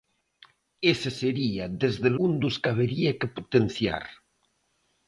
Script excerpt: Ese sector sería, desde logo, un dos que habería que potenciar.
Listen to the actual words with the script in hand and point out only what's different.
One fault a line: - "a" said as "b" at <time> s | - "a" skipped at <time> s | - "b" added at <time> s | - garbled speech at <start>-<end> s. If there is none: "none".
- "sector" skipped at 1.1 s
- "logo" skipped at 2.1 s